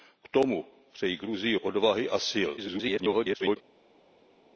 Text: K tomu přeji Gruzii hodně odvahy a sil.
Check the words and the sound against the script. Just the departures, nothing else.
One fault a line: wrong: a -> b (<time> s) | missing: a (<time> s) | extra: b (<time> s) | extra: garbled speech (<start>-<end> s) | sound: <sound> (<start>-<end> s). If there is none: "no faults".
missing: hodně (1.6 s)
extra: garbled speech (2.6-3.6 s)